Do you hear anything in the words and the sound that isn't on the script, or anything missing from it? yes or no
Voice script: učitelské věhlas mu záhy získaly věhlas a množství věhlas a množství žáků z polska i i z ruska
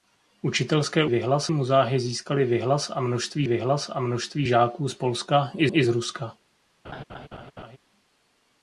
yes